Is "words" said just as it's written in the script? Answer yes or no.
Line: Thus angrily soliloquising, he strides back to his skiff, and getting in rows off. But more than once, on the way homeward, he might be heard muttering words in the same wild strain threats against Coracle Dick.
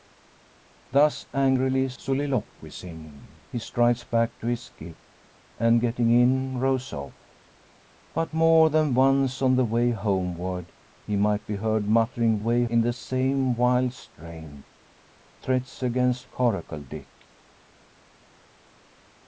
no